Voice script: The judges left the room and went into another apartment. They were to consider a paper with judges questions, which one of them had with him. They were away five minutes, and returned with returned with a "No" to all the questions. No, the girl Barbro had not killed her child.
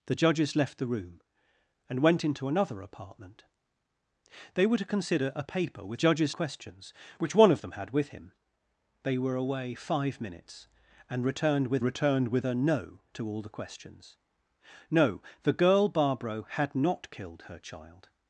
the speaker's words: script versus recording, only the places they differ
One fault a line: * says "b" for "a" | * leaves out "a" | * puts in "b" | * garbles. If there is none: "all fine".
all fine